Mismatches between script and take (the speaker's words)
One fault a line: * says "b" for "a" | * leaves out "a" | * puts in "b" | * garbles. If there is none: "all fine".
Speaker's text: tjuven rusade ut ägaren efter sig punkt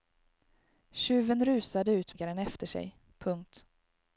all fine